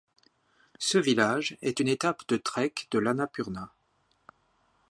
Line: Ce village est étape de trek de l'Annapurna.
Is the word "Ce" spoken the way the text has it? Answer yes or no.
yes